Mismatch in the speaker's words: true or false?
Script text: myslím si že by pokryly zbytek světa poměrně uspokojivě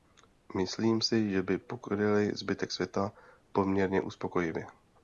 false